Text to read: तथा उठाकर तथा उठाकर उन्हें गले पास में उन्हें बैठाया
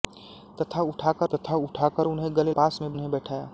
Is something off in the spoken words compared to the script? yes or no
no